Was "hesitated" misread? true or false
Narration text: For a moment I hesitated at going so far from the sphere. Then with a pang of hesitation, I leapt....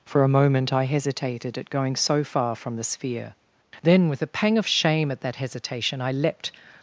false